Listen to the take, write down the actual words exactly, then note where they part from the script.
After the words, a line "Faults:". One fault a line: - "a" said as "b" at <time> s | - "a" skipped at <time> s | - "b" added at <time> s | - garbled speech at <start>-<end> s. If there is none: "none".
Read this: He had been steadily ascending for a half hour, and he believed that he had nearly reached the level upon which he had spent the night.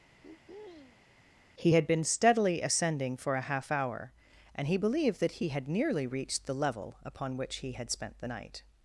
He had been steadily ascending for a half hour, and he believed that he had nearly reached the level upon which he had spent the night.
Faults:
none